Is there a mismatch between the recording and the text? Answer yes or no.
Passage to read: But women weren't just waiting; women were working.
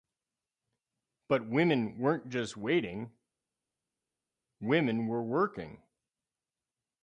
no